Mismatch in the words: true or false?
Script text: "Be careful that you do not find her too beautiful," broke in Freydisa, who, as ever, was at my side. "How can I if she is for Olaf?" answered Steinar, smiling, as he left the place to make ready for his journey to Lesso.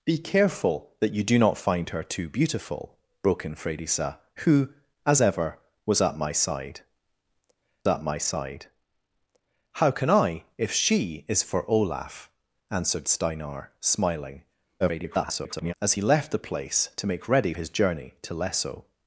true